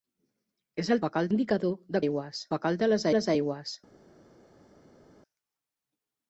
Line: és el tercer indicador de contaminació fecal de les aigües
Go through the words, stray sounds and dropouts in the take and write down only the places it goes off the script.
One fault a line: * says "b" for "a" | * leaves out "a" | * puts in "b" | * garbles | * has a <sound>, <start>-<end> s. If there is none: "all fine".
* says "fecal" for "tercer"
* says "aigües" for "contaminació"
* puts in "les"